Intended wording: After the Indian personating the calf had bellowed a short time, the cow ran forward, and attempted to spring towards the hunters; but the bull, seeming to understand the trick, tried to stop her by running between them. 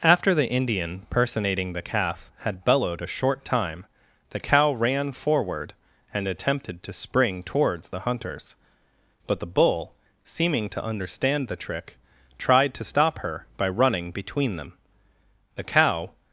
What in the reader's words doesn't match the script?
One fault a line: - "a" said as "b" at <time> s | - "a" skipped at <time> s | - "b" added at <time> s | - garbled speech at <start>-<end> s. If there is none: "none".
- "The cow" added at 15.5 s